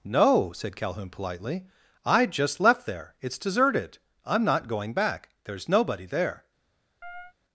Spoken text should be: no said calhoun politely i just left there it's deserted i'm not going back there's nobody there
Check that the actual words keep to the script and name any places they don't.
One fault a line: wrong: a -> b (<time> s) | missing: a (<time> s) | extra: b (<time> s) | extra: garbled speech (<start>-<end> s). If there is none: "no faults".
no faults